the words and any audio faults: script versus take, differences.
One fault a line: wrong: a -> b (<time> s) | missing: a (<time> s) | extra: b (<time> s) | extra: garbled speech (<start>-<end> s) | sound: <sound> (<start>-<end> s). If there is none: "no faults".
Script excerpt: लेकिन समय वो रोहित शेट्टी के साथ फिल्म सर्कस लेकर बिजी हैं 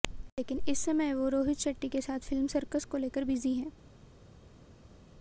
extra: इस (0.7 s)
extra: को (2.8 s)